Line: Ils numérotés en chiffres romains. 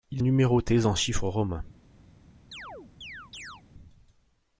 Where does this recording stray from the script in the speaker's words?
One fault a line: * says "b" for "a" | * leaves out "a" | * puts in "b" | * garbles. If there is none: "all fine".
all fine